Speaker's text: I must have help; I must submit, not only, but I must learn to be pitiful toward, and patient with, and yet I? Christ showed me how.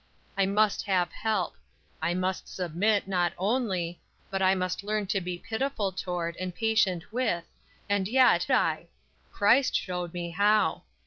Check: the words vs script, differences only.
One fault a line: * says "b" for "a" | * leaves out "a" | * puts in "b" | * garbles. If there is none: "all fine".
all fine